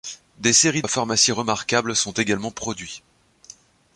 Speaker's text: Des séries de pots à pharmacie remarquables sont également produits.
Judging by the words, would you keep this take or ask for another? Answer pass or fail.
fail